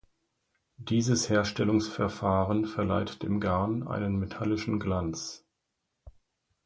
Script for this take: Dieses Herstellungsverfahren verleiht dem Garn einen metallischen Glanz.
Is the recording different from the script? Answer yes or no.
no